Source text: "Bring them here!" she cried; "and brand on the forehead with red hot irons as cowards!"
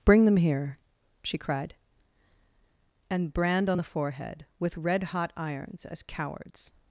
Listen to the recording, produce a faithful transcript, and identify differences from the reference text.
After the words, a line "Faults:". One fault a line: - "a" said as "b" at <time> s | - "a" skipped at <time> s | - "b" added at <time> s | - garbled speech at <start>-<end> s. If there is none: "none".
"Bring them here!" she cried; "and brand on the forehead with red hot irons as cowards!"
Faults:
none